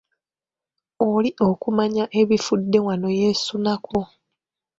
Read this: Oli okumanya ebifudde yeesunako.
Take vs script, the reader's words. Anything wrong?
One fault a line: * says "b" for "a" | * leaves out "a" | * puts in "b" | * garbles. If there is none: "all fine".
* puts in "wano"